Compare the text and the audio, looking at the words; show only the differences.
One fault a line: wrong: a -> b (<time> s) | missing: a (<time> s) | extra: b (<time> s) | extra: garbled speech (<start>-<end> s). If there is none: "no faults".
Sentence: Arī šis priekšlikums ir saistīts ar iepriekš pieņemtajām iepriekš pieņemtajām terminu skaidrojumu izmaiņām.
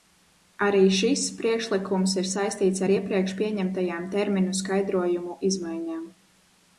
missing: iepriekš pieņemtajām (4.0 s)